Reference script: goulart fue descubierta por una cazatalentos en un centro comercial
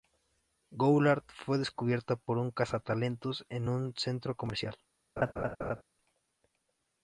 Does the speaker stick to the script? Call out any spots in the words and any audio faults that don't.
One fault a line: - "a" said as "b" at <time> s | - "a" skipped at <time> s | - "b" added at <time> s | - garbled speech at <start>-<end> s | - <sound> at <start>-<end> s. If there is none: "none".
- "una" said as "un" at 2.4 s
- laugh at 5.2-5.8 s